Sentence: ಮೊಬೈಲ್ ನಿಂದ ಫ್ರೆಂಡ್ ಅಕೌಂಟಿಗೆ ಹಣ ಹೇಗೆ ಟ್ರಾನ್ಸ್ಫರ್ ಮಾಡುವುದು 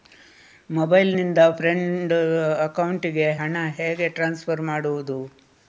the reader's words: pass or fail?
pass